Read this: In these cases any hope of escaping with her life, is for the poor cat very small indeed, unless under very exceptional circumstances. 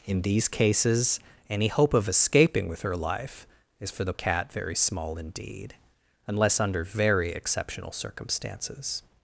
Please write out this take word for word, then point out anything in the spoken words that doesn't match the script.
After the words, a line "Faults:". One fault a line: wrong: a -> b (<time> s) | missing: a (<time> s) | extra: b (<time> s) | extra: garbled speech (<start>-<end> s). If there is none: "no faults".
In these cases any hope of escaping with her life, is for the cat very small indeed, unless under very exceptional circumstances.
Faults:
missing: poor (4.1 s)